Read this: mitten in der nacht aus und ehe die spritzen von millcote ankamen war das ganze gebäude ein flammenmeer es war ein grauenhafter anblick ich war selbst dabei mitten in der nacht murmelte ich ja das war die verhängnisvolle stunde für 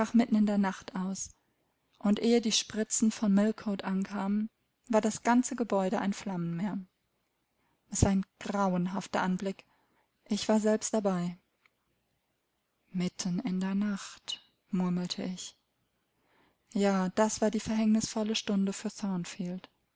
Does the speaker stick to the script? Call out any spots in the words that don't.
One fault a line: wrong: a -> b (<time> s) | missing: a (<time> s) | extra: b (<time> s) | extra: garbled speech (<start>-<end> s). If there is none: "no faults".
no faults